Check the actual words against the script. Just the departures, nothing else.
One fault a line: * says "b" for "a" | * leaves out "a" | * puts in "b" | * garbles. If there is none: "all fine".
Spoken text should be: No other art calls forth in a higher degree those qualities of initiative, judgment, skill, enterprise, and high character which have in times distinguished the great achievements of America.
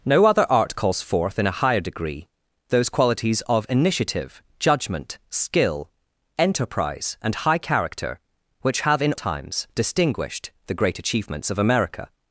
all fine